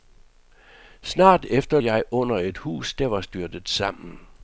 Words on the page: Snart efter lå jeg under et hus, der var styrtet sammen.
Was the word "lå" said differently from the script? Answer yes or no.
yes